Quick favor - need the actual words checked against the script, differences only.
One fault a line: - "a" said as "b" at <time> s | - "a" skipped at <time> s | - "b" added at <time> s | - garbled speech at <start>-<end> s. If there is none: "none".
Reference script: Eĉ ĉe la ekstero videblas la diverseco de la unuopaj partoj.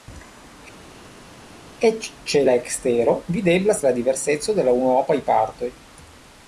none